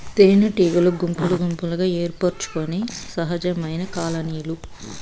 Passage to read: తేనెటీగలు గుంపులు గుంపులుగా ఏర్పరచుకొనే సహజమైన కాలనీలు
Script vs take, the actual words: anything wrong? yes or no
no